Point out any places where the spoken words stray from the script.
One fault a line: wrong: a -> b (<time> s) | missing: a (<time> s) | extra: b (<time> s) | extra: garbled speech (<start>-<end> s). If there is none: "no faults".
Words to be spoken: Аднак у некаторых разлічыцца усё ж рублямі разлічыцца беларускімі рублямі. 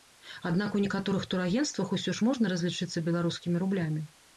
wrong: разлічыцца -> турагенцтвах (1.3 s)
wrong: рублямі -> можна (2.3 s)